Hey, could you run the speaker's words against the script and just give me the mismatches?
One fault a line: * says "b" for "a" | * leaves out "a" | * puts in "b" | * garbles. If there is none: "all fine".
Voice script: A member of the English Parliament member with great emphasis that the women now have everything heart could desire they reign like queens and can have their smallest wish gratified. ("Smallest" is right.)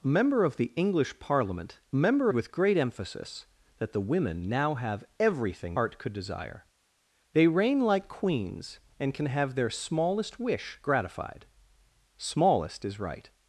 all fine